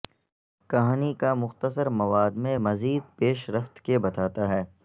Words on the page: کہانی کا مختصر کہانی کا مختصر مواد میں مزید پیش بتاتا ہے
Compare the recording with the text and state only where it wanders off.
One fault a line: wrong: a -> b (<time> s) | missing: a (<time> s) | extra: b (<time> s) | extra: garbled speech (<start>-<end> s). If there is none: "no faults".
missing: کہانی کا مختصر (1.9 s)
extra: رفت کے (3.5 s)